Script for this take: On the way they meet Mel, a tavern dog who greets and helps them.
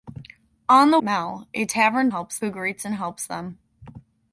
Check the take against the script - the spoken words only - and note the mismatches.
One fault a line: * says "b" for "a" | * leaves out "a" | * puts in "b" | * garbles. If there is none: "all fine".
* leaves out "way they meet"
* says "helps" for "dog"